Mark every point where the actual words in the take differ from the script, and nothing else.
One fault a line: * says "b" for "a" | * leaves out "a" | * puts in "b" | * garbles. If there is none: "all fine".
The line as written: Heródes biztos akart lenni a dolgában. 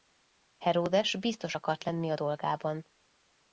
all fine